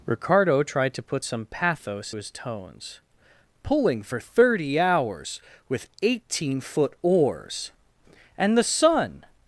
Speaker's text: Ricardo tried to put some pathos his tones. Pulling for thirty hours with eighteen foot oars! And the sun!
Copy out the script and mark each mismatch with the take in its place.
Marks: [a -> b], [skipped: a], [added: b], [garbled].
Ricardo tried to put some pathos his tones. Pulling for thirty hours with eighteen foot oars! And the sun!